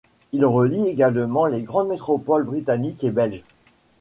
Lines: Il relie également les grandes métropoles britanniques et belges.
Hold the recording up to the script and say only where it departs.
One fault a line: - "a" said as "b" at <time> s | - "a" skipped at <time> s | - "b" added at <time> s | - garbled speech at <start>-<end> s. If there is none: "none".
none